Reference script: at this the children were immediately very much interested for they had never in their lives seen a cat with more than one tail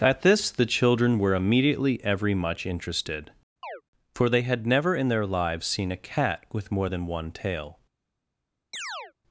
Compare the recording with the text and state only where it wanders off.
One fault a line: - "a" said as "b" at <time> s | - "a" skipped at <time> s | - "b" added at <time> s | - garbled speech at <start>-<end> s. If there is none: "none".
- "very" said as "every" at 2.0 s